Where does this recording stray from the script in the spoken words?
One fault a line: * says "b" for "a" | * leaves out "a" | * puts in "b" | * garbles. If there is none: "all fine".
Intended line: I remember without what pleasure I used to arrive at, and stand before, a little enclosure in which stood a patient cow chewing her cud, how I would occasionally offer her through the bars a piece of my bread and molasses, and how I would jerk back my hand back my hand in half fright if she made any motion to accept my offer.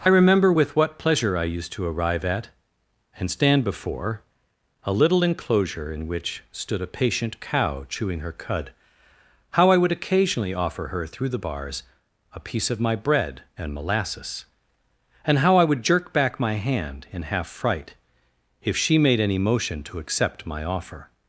* says "with" for "without"
* leaves out "back my hand"